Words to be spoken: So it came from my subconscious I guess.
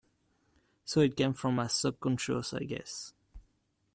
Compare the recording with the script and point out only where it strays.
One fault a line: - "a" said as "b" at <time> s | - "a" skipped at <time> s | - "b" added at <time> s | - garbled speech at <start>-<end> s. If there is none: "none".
none